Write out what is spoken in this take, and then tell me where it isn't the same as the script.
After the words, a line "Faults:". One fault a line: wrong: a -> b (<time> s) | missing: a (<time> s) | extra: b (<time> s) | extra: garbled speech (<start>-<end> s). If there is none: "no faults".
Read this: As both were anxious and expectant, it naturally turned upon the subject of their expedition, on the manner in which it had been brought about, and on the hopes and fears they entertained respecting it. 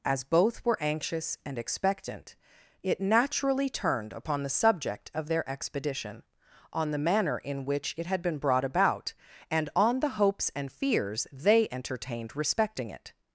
As both were anxious and expectant, it naturally turned upon the subject of their expedition, on the manner in which it had been brought about, and on the hopes and fears they entertained respecting it.
Faults:
no faults